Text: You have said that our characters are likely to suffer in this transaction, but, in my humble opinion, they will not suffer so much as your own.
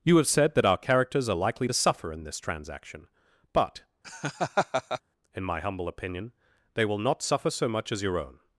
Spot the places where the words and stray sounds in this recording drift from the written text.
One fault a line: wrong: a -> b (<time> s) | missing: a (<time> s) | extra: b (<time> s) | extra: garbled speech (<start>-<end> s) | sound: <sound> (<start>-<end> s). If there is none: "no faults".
sound: laugh (4.0-5.0 s)